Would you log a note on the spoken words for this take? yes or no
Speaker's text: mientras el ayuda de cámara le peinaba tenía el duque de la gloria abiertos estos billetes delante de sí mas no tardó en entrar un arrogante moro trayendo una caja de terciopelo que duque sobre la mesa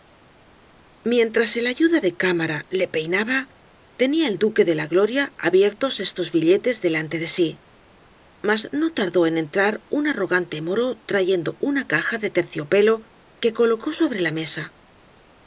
yes